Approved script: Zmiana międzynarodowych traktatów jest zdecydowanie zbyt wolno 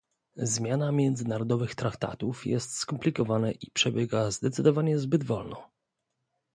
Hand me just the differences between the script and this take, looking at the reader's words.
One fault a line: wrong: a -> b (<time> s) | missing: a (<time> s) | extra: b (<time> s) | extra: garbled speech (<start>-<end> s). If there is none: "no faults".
extra: skomplikowana i przebiega (2.8 s)